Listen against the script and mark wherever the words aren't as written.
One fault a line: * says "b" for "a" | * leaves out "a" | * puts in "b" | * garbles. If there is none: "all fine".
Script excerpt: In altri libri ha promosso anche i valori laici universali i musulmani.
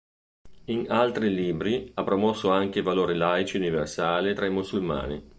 * puts in "tra"